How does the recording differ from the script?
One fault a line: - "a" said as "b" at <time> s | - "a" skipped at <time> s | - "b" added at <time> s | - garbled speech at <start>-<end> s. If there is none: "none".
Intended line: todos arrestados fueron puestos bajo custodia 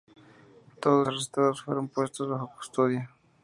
none